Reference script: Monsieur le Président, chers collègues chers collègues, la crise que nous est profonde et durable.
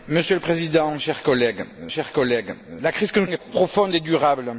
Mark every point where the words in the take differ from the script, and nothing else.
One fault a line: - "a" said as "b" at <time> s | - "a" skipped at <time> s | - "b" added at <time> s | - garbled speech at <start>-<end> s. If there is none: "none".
none